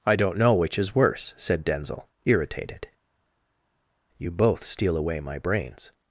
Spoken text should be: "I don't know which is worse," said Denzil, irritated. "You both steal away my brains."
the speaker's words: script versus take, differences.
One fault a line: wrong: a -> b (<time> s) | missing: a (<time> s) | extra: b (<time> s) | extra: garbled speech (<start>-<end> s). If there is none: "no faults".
no faults